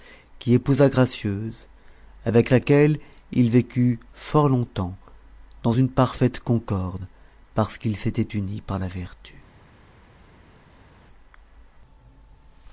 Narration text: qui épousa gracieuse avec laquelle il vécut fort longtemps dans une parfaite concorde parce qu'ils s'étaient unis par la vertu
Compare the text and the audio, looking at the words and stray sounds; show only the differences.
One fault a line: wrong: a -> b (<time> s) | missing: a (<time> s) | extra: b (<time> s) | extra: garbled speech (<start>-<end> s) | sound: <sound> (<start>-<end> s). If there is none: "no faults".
no faults